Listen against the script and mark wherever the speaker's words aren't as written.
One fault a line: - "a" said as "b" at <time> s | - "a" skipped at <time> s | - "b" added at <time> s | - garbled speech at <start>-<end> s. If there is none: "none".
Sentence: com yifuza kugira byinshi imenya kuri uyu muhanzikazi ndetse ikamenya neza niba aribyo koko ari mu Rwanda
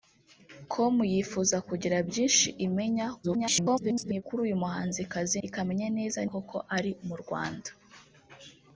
- garbled speech at 3.2-4.2 s
- "ndetse" skipped at 5.4 s
- "niba aribyo" skipped at 6.2 s